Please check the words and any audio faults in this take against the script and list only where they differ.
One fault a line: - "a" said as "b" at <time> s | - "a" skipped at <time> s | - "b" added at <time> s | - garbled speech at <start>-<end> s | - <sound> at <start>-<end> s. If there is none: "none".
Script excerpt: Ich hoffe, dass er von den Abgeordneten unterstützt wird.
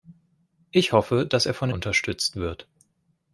- "den Abgeordneten" skipped at 1.7 s